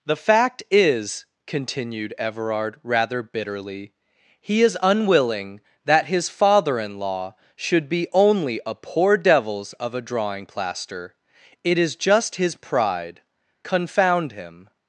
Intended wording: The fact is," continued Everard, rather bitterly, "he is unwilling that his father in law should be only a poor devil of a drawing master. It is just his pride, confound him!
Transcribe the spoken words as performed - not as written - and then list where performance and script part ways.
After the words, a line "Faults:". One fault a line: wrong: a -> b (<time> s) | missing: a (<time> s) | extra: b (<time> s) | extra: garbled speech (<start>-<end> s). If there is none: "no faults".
The fact is," continued Everard, rather bitterly, "he is unwilling that his father in law should be only a poor devils of a drawing plaster. It is just his pride, confound him!
Faults:
wrong: devil -> devils (9.2 s)
wrong: master -> plaster (10.5 s)